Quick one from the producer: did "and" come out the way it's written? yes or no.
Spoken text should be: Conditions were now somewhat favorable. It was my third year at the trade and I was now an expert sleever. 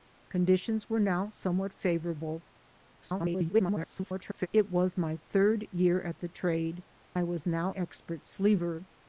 no